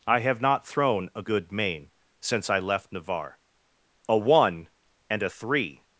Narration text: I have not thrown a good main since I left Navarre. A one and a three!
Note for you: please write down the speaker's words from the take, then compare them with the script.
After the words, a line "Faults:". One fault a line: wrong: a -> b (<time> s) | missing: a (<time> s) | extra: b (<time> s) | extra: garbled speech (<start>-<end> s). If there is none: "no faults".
I have not thrown a good main since I left Navarre. A one and a three!
Faults:
no faults